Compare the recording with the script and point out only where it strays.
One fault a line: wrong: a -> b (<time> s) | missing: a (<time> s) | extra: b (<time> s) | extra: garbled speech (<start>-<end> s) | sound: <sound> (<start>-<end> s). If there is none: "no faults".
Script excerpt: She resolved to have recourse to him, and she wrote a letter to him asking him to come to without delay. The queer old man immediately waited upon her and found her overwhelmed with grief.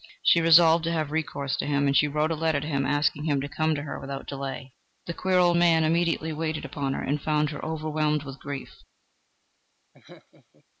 extra: her (3.8 s)
sound: laugh (9.9-10.7 s)